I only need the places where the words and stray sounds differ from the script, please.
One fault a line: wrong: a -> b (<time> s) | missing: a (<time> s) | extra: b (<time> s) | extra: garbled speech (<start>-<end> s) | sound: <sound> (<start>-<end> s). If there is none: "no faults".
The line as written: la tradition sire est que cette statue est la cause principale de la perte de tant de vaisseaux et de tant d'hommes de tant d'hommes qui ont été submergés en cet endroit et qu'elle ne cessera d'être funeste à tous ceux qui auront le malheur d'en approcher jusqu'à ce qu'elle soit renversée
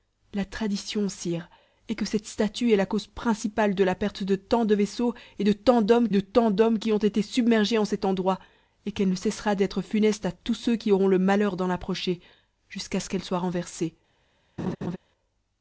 sound: laugh (14.6-15.0 s)